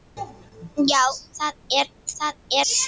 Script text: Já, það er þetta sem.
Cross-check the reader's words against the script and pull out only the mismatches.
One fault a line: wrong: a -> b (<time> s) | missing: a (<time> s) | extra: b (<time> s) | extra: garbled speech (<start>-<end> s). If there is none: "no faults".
wrong: þetta -> það (2.2 s)